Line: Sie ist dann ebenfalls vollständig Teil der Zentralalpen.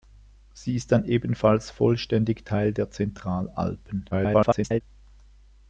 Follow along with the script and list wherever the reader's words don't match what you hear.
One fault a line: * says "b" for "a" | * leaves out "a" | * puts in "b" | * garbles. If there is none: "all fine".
* garbles